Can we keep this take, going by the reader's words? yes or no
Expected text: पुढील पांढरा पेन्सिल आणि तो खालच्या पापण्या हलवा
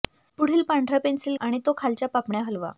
yes